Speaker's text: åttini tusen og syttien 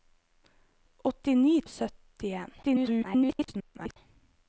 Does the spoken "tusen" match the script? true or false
false